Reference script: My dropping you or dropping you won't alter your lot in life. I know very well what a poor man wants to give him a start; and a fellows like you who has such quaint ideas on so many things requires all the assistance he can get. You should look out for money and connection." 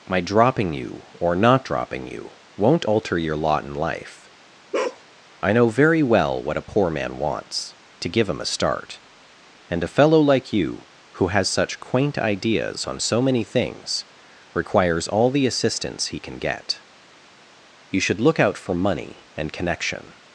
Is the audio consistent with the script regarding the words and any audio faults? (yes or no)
no